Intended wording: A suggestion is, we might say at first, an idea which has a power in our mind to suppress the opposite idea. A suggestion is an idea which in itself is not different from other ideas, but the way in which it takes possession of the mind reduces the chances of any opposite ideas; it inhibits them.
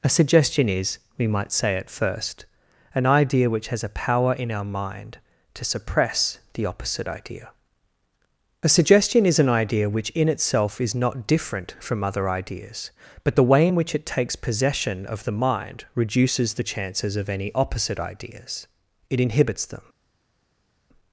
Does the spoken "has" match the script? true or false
true